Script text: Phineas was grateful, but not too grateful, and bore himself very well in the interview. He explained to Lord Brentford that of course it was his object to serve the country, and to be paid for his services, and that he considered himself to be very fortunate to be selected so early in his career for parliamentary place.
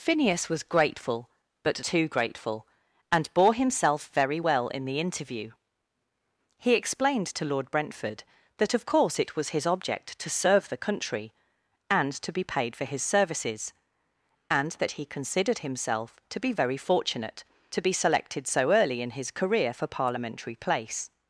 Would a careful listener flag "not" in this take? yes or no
yes